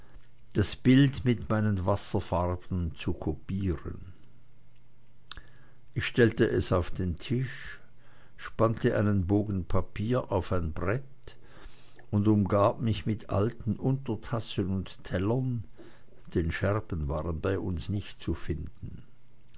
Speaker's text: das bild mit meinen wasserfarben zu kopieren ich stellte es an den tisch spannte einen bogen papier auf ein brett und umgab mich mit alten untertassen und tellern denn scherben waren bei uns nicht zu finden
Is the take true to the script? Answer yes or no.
no